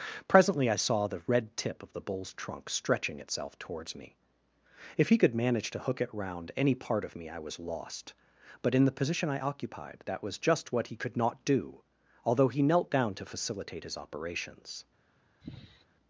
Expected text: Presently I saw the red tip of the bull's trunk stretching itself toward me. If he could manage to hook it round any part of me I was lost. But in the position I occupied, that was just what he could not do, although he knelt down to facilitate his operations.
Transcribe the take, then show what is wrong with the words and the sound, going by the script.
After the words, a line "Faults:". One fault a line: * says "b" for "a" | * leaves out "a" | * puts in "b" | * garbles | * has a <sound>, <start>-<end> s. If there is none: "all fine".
Presently I saw the red tip of the bull's trunk stretching itself towards me. If he could manage to hook it round any part of me I was lost. But in the position I occupied, that was just what he could not do, although he knelt down to facilitate his operations.
Faults:
* says "towards" for "toward"
* has a sigh, 15.4-15.9 s